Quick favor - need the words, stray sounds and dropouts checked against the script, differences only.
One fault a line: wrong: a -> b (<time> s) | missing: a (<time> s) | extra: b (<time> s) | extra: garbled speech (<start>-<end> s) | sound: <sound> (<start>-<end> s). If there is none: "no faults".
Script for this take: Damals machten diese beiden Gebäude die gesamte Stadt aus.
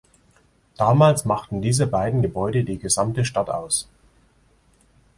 no faults